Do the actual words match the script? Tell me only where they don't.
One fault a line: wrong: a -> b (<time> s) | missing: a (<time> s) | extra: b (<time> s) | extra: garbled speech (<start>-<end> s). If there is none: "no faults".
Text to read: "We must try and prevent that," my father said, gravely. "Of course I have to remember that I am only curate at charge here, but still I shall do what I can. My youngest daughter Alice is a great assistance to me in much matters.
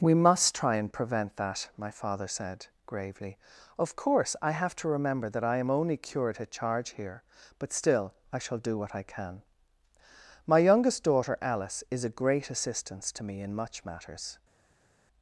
no faults